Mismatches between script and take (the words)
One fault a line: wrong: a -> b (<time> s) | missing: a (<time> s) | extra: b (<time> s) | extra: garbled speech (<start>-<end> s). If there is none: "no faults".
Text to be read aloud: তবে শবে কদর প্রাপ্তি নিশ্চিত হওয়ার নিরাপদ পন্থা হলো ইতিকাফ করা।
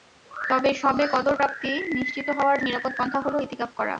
no faults